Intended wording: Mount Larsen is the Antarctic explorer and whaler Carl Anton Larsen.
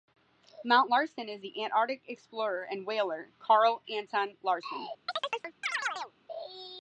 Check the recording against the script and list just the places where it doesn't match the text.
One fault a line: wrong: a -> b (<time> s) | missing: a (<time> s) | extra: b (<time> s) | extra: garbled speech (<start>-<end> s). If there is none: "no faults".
no faults